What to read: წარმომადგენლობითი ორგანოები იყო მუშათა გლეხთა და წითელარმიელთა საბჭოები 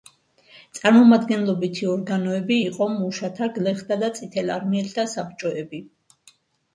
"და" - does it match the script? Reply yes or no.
yes